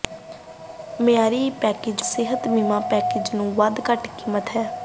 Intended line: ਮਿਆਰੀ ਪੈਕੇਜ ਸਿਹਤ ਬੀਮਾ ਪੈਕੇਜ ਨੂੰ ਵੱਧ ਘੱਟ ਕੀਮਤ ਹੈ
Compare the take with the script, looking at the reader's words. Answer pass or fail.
pass